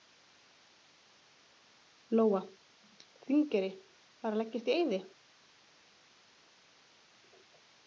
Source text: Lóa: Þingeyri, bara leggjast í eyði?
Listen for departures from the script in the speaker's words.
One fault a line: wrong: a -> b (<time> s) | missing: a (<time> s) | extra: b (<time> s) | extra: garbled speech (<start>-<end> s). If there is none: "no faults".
no faults